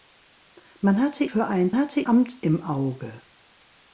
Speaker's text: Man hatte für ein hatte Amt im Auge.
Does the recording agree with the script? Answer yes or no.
yes